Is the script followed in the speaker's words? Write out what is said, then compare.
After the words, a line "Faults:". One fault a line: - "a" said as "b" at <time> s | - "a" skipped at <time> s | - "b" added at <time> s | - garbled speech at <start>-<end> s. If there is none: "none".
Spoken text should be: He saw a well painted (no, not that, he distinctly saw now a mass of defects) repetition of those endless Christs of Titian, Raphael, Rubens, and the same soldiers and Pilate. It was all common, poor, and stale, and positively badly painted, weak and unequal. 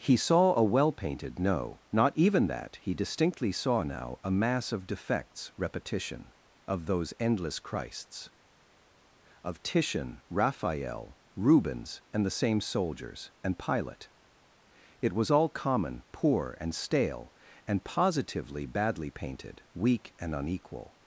He saw a well painted (no, not even that, he distinctly saw now a mass of defects) repetition of those endless Christs of Titian, Raphael, Rubens, and the same soldiers and Pilate. It was all common, poor, and stale, and positively badly painted, weak and unequal.
Faults:
- "even" added at 2.2 s